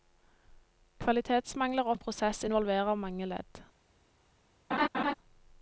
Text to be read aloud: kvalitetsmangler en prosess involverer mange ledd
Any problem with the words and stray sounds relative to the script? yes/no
yes